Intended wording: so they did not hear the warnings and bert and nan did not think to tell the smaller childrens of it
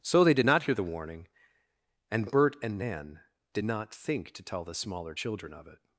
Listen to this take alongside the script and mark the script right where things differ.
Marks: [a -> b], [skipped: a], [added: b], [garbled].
so they did not hear the [warnings -> warning] and bert and nan did not think to tell the smaller [childrens -> children] of it